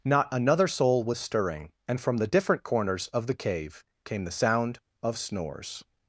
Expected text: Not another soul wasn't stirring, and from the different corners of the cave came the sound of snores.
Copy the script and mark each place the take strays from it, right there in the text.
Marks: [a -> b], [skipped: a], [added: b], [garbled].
Not another soul [wasn't -> was] stirring, and from the different corners of the cave came the sound of snores.